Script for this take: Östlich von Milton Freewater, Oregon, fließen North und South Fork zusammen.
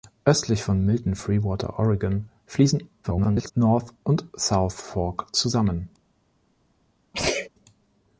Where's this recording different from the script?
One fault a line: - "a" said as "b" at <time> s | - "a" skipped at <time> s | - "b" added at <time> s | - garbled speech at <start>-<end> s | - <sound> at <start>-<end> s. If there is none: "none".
- garbled speech at 3.0-3.5 s
- sneeze at 7.1-7.5 s